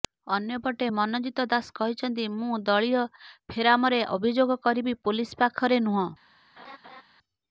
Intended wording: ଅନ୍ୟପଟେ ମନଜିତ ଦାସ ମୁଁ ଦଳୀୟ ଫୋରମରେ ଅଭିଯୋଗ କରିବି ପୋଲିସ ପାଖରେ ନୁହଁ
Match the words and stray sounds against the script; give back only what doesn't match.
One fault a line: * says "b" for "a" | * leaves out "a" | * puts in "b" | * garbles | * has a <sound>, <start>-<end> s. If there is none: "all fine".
* puts in "କହିଛନ୍ତି"
* has a laugh, 6.6-7.0 s